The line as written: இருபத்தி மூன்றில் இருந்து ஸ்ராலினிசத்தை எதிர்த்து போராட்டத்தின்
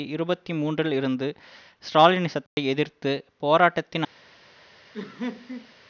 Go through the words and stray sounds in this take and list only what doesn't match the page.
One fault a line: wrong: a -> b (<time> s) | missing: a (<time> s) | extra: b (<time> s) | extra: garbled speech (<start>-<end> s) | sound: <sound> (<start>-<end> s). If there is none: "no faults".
sound: dropout (2.5-2.6 s)
sound: laugh (4.9-5.7 s)